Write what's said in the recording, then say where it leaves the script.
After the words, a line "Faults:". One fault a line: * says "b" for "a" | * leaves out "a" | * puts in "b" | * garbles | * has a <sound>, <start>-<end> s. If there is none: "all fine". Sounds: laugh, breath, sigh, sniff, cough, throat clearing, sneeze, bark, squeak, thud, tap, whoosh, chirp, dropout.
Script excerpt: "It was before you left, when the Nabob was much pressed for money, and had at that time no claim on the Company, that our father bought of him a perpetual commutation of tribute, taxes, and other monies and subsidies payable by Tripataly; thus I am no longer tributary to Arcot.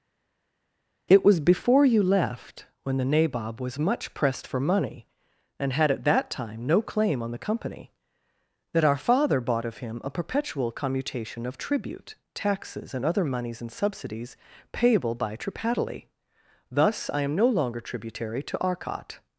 "It was before you left, when the Nabob was much pressed for money, and had at that time no claim on the Company, that our father bought of him a perpetual commutation of tribute, taxes, and other monies and subsidies payable by Tripataly; thus I am no longer tributary to Arcot.
Faults:
all fine